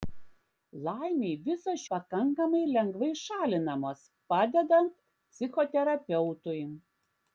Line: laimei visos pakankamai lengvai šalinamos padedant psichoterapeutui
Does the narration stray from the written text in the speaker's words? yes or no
no